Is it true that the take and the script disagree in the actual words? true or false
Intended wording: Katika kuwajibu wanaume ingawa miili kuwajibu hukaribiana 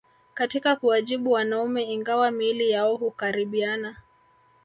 true